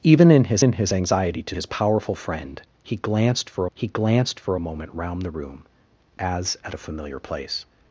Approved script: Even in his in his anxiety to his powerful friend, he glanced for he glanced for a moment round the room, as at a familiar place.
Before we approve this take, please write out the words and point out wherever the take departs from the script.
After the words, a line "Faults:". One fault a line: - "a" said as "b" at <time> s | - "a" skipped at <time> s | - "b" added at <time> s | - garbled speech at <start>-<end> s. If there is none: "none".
Even in his in his anxiety to his powerful friend, he glanced for he glanced for a moment round the room, as at a familiar place.
Faults:
none